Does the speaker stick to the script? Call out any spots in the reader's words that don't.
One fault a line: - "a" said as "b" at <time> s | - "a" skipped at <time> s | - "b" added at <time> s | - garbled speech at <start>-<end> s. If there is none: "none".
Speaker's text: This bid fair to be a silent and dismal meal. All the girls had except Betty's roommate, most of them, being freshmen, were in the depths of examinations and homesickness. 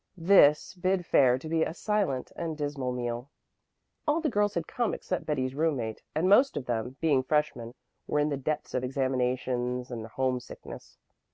- "come" added at 4.7 s
- "and" added at 6.2 s